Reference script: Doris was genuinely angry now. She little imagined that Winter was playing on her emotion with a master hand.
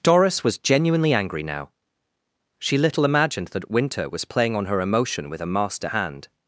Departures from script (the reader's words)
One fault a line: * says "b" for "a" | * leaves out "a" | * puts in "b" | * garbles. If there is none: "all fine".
all fine